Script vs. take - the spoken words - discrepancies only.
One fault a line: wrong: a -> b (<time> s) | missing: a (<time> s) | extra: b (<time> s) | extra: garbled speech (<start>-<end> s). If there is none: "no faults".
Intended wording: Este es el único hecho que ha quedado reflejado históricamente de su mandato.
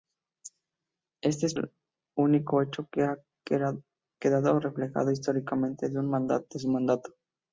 no faults